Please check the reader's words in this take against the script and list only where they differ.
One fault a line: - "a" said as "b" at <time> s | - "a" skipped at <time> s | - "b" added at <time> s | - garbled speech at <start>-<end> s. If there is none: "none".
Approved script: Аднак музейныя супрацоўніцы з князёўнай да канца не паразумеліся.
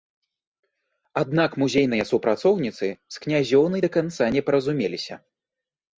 none